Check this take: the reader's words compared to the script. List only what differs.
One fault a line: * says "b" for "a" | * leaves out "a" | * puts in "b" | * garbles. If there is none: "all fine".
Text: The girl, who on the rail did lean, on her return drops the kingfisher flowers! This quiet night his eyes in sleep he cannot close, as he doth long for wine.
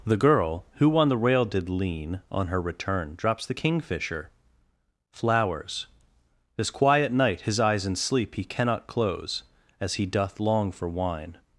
all fine